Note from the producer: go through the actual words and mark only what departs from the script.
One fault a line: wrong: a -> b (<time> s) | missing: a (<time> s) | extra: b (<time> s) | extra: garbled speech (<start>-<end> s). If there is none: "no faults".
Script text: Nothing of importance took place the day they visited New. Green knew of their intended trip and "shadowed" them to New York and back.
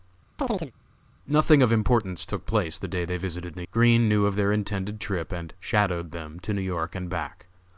no faults